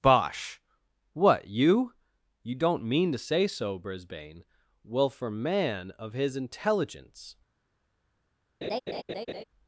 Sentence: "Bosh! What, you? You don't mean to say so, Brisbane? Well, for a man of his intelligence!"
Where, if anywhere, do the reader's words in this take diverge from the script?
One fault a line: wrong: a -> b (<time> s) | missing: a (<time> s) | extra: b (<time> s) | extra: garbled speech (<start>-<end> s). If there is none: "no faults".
missing: a (5.3 s)